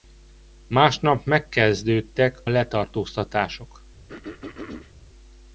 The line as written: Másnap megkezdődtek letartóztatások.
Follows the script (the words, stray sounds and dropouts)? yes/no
no